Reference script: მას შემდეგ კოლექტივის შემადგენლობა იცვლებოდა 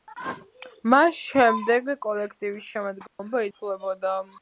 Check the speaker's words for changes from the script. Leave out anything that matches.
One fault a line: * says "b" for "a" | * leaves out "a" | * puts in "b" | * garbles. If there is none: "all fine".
all fine